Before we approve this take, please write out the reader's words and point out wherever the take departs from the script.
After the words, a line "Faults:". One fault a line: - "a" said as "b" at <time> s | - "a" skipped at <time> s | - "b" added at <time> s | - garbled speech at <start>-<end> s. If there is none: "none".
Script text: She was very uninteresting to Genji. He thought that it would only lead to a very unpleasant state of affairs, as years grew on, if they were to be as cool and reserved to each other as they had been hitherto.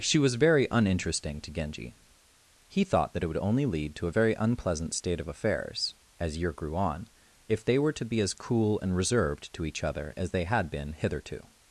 She was very uninteresting to Genji. He thought that it would only lead to a very unpleasant state of affairs, as year grew on, if they were to be as cool and reserved to each other as they had been hitherto.
Faults:
- "years" said as "year" at 6.4 s